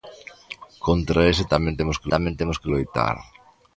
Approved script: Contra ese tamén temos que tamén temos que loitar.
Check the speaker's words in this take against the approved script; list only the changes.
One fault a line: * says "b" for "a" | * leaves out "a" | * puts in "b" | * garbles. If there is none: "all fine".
all fine